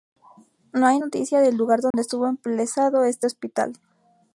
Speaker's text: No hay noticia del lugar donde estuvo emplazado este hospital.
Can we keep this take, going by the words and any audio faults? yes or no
no